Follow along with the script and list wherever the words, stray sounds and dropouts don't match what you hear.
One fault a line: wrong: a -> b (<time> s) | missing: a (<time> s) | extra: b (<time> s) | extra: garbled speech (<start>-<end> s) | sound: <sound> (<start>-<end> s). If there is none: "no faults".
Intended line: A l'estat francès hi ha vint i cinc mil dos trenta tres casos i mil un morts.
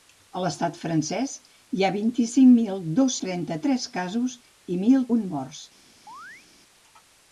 sound: chirp (6.1-6.5 s)